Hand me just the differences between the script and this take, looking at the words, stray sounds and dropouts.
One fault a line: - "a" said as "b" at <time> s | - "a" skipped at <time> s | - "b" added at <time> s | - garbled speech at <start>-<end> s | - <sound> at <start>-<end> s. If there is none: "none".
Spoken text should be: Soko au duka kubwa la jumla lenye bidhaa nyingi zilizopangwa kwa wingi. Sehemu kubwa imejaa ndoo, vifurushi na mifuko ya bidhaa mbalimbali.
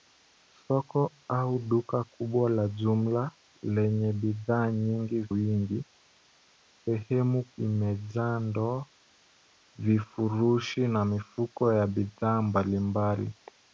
- "zilizopangwa kwa" skipped at 5.2 s
- "kubwa" skipped at 7.4 s